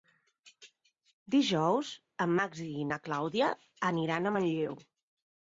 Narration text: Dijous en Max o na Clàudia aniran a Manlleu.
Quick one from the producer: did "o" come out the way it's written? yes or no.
no